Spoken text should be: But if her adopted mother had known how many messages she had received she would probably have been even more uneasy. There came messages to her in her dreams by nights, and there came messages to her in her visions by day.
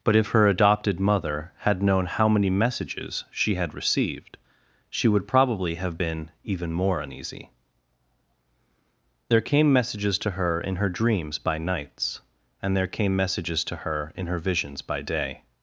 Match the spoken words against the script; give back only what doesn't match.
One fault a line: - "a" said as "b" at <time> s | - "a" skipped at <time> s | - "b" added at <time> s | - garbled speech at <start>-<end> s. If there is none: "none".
none